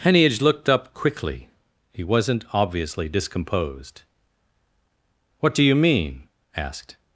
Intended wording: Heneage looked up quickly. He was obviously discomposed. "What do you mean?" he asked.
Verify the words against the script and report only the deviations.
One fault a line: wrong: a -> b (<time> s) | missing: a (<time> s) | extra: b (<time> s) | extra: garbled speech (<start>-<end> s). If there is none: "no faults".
wrong: was -> wasn't (2.0 s)
missing: he (6.3 s)